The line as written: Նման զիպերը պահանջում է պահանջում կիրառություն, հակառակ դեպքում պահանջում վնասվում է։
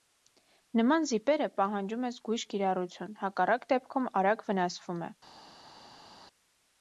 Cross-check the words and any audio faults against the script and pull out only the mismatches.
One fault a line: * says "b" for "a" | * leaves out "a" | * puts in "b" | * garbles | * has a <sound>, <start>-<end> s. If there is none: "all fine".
* says "զգույշ" for "պահանջում"
* says "արագ" for "պահանջում"